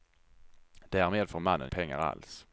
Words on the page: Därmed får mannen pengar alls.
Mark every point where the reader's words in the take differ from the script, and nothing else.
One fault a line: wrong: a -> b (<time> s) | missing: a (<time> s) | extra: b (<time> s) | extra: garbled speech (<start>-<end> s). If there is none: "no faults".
no faults